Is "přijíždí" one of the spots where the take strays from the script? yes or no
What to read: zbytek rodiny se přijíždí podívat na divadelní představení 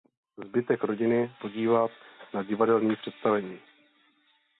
yes